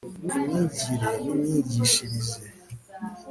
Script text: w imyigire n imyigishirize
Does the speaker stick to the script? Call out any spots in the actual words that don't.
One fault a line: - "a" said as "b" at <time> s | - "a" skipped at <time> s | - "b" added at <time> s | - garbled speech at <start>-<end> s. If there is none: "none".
none